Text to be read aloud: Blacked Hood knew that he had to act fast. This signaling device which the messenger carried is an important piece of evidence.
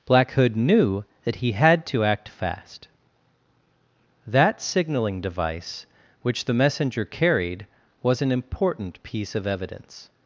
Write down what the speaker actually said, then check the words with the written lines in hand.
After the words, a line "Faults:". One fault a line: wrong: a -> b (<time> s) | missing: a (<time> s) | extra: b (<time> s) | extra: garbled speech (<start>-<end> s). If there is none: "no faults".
Black Hood knew that he had to act fast. That signaling device which the messenger carried was an important piece of evidence.
Faults:
wrong: Blacked -> Black (0.1 s)
wrong: This -> That (4.3 s)
wrong: is -> was (8.0 s)